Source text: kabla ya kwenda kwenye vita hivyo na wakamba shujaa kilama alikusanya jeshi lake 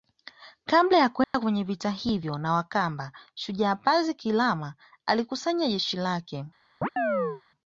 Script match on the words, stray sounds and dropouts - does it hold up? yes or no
no